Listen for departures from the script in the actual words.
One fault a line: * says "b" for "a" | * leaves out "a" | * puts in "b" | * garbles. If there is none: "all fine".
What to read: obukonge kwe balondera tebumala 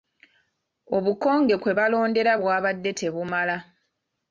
* puts in "bwabadde"